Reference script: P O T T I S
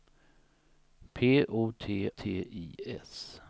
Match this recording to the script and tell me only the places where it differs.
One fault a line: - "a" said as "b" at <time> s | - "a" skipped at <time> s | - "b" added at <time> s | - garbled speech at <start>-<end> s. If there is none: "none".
none